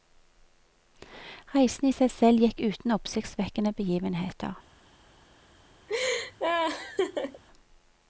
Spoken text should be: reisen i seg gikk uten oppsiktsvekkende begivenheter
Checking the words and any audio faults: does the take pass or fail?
fail